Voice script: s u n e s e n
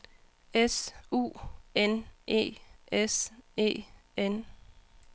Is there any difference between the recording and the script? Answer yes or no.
no